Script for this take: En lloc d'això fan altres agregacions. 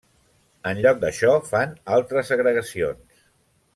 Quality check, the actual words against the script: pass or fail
pass